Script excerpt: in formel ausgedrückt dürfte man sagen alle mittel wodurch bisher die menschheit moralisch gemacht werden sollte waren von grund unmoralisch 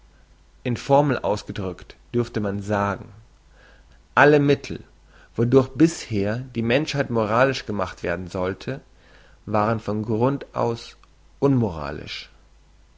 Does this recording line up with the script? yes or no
no